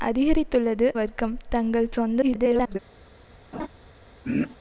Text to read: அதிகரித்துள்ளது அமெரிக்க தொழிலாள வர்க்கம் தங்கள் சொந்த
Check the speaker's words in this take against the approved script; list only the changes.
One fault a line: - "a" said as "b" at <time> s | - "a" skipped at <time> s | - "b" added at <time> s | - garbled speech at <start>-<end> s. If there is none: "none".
- "அமெரிக்க தொழிலாள" skipped at 0.9 s
- garbled speech at 2.2-2.8 s